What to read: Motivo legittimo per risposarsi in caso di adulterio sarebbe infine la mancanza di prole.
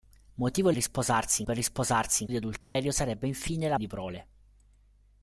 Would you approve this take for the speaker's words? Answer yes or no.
no